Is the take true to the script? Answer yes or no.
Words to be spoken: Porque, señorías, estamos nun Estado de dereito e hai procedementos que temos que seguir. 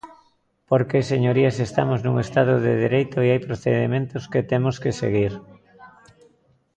yes